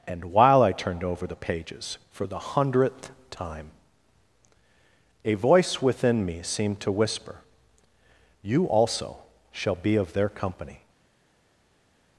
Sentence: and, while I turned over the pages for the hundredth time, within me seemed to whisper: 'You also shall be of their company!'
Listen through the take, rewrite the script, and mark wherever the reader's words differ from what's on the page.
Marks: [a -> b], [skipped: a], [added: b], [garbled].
and, while I turned over the pages for the hundredth time, [added: a voice] within me seemed to whisper: 'You also shall be of their company!'